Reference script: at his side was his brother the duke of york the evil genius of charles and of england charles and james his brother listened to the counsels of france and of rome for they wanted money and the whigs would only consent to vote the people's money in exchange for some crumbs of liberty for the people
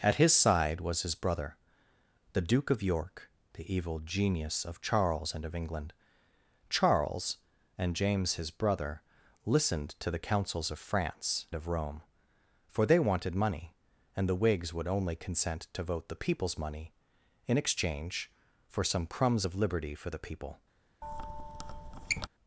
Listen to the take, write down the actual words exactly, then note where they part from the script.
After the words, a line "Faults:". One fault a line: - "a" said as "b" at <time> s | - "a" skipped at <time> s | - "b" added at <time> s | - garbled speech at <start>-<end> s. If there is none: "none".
at his side was his brother the duke of york the evil genius of charles and of england charles and james his brother listened to the counsels of france of rome for they wanted money and the whigs would only consent to vote the people's money in exchange for some crumbs of liberty for the people
Faults:
- "and" skipped at 11.5 s